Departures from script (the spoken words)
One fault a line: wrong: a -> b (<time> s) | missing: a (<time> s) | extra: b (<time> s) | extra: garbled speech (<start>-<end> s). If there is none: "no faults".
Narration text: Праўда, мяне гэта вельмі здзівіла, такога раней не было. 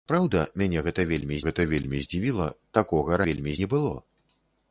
extra: гэта вельмі (1.5 s)
wrong: раней -> вельмі (3.3 s)